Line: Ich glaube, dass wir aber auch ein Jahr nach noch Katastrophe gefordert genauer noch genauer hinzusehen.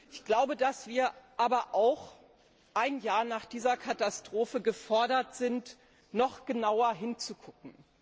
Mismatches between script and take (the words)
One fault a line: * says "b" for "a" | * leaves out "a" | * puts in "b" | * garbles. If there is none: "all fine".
* says "dieser" for "noch"
* says "sind" for "genauer"